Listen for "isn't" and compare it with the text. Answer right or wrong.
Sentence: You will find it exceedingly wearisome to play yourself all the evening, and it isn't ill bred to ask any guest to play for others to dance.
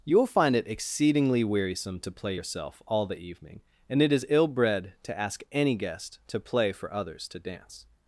wrong